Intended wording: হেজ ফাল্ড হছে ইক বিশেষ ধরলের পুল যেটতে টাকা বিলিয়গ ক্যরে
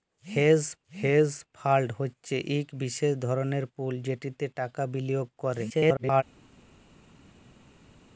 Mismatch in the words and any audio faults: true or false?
true